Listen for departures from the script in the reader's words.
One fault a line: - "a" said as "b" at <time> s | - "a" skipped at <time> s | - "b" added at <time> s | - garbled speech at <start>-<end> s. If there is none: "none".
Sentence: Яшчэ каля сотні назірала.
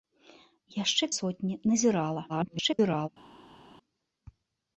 - "каля" skipped at 1.1 s
- garbled speech at 2.3-3.1 s